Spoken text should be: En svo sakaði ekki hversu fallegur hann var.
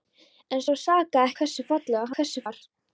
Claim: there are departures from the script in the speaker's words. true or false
true